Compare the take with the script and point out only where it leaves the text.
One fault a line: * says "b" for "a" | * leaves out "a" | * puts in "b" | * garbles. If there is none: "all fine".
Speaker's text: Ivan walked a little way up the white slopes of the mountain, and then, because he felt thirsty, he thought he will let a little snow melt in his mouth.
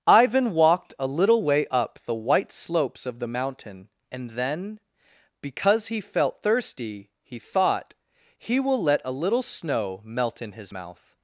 all fine